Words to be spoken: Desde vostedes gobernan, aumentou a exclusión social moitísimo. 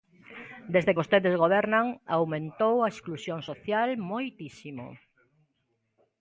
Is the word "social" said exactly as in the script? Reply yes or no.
yes